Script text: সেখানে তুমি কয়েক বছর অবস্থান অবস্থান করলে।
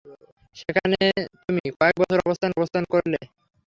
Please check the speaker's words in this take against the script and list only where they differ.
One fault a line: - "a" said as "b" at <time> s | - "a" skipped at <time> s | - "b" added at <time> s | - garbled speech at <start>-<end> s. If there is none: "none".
none